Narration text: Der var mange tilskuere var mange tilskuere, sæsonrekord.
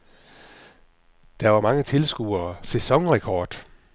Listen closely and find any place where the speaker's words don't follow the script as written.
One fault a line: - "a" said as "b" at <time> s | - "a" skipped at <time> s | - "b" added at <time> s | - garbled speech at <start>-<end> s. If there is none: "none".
- "var mange tilskuere" skipped at 2.5 s